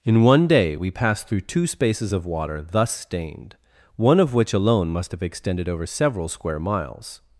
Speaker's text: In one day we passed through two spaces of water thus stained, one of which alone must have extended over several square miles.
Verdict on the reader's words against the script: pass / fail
pass